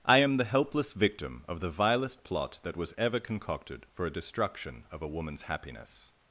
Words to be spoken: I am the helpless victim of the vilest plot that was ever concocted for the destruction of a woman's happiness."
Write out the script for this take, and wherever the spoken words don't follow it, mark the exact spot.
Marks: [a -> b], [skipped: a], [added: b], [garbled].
I am the helpless victim of the vilest plot that was ever concocted for [the -> a] destruction of a woman's happiness."